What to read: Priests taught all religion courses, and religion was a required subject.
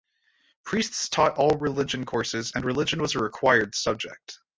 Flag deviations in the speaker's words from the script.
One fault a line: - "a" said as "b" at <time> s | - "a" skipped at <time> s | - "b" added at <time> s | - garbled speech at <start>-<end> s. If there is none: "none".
none